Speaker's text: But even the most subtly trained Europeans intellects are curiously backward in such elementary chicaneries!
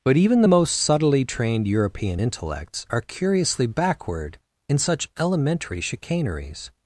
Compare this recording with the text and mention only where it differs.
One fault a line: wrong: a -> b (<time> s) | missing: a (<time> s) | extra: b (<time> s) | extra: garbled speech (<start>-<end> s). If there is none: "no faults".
wrong: Europeans -> European (1.7 s)